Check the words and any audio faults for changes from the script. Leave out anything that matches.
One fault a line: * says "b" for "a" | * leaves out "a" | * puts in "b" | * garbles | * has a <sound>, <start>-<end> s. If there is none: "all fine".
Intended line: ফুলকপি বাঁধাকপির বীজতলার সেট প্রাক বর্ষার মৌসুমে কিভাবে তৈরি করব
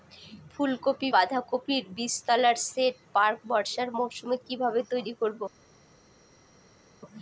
all fine